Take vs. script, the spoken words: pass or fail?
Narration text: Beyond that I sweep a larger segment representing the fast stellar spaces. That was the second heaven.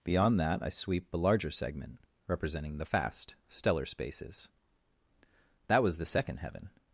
pass